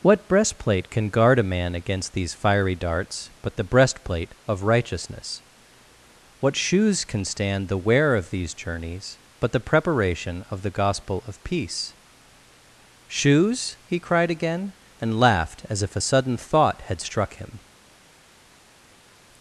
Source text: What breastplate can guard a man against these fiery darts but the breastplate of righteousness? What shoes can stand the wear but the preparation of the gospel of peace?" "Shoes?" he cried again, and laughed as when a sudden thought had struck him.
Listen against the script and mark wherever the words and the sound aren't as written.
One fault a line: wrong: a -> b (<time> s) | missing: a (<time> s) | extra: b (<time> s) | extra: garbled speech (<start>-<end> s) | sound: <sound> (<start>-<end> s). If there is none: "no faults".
extra: of these journeys (8.2 s)
wrong: when -> if (15.8 s)